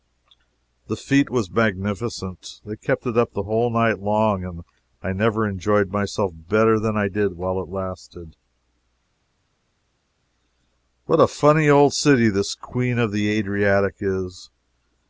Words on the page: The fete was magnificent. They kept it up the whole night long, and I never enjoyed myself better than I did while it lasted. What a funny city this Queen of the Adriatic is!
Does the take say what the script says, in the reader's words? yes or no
no